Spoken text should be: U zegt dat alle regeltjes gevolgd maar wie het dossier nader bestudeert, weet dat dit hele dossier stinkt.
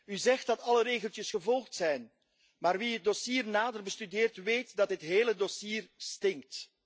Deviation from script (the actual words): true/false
true